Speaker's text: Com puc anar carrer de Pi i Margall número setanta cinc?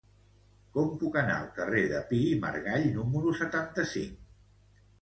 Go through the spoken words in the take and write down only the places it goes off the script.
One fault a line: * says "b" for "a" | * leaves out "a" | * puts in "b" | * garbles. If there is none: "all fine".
* puts in "al"